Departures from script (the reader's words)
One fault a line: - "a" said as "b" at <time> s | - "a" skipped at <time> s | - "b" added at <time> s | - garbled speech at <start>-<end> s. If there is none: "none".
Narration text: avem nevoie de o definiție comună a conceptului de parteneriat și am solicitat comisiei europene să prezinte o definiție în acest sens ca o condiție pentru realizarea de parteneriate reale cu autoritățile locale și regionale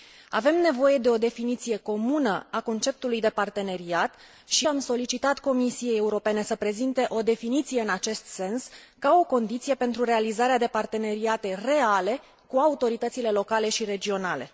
none